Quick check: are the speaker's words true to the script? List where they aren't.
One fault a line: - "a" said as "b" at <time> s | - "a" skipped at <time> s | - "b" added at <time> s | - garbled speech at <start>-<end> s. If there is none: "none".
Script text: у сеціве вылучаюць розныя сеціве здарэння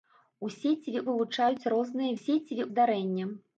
none